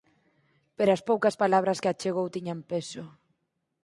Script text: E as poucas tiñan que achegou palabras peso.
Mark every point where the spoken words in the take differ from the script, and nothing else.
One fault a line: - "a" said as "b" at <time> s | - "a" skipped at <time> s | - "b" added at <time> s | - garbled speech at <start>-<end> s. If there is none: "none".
- "E" said as "Pero" at 0.8 s
- "tiñan" said as "palabras" at 1.4 s
- "palabras" said as "tiñan" at 2.3 s